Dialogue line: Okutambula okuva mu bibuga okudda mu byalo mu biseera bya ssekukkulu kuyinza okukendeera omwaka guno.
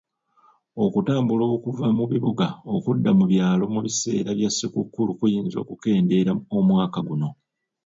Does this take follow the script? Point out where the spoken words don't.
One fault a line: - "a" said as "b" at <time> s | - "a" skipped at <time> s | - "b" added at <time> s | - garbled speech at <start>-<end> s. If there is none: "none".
none